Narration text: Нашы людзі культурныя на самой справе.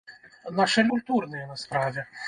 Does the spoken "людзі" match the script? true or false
false